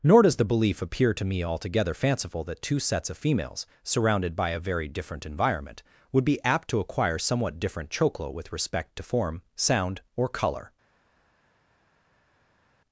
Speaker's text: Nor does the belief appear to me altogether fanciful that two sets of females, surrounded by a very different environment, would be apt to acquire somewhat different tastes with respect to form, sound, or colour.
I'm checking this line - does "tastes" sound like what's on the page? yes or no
no